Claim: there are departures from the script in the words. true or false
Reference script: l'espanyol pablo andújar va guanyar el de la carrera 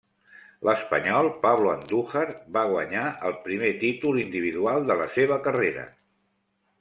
true